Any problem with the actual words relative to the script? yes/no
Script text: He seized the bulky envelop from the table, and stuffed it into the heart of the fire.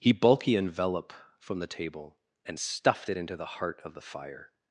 yes